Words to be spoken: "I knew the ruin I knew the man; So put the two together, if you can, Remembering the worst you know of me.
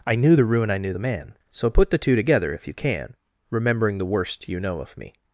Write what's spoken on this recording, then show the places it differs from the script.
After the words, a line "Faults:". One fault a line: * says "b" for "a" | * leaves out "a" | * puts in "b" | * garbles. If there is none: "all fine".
"I knew the ruin I knew the man; So put the two together, if you can, Remembering the worst you know of me.
Faults:
all fine